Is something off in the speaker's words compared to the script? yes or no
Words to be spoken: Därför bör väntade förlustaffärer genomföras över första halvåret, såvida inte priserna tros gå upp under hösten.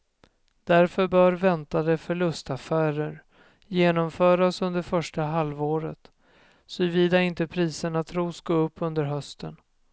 yes